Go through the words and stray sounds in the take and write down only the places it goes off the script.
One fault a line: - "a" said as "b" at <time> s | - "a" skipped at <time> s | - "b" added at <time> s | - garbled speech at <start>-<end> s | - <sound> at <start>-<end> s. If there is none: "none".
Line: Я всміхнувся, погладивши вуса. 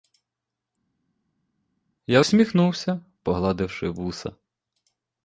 none